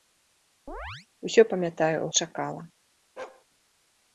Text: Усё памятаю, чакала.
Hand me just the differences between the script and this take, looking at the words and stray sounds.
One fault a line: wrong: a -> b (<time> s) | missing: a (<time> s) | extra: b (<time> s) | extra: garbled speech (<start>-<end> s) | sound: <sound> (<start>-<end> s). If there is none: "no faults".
sound: chirp (0.7-1.1 s)
sound: bark (3.2-3.4 s)